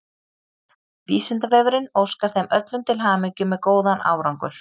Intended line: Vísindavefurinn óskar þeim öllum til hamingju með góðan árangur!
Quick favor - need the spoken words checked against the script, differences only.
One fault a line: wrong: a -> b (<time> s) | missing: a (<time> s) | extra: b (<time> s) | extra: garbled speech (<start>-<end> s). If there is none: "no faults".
no faults